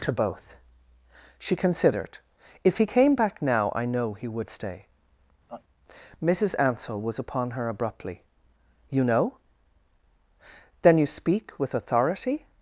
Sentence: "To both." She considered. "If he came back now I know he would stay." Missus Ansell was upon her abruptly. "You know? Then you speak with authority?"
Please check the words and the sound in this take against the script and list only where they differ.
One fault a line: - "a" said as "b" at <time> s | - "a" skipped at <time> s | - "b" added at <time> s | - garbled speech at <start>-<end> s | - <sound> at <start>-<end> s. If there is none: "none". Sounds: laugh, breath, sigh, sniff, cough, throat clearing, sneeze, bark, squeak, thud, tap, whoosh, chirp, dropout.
- laugh at 5.5-5.6 s